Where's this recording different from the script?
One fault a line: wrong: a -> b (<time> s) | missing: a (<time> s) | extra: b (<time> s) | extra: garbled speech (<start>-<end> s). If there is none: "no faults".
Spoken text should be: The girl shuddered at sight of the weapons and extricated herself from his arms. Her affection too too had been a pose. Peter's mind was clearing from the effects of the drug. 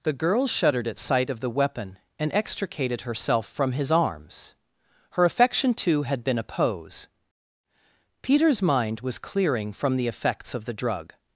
wrong: weapons -> weapon (1.5 s)
missing: too (6.0 s)